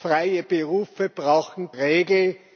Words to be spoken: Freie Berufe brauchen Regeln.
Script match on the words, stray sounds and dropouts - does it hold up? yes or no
yes